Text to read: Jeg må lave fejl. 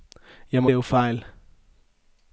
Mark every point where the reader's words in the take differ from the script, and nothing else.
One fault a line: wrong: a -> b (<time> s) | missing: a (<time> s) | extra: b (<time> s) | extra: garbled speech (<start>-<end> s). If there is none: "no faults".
no faults